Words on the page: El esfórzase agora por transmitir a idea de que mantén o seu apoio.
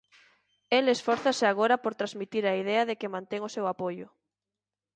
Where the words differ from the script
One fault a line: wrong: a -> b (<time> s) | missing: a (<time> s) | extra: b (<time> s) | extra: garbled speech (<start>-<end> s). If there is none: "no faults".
no faults